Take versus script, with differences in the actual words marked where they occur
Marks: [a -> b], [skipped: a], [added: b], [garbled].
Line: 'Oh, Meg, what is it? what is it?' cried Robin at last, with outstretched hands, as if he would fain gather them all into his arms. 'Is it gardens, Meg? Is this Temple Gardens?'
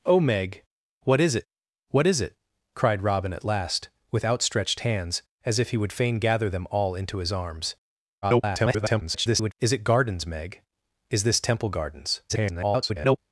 'Oh, Meg, what is it? what is it?' cried Robin at last, with outstretched hands, as if he would fain gather them all into his arms. [garbled] 'Is it gardens, Meg? Is this Temple Gardens?' [garbled]